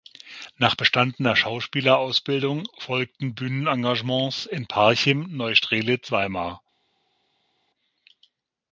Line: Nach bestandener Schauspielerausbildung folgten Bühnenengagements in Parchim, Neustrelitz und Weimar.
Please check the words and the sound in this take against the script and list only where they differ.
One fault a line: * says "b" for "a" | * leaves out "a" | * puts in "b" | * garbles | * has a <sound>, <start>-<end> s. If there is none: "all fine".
* leaves out "und"